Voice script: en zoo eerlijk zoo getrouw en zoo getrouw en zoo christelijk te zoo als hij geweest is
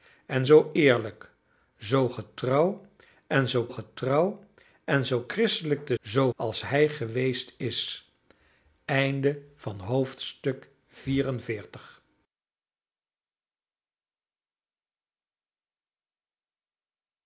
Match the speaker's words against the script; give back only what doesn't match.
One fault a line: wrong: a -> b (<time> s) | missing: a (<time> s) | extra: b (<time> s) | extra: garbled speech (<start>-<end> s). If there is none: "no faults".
no faults